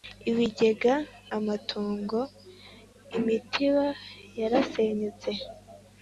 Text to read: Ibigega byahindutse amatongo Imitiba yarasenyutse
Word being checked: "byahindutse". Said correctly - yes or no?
no